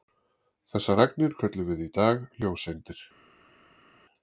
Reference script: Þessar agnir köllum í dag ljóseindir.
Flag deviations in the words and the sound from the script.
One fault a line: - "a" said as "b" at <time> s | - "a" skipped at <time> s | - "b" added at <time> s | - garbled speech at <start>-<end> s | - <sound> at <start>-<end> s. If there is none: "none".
- "við" added at 1.7 s